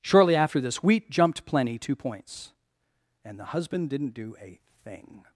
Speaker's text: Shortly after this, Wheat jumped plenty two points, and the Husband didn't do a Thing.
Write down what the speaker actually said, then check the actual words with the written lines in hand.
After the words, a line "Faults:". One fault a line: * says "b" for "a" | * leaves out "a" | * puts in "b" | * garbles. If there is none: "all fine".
Shortly after this, Wheat jumped plenty two points, and the Husband didn't do a Thing.
Faults:
all fine